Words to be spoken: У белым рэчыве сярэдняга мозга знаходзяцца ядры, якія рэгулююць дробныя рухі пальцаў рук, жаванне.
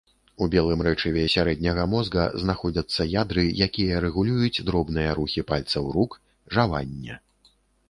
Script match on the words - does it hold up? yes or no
yes